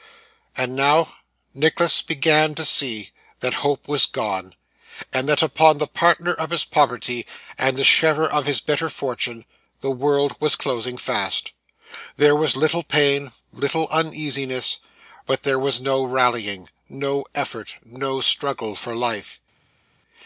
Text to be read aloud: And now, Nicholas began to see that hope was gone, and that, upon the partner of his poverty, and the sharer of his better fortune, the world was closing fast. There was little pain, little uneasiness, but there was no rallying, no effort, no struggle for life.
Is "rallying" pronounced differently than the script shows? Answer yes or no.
no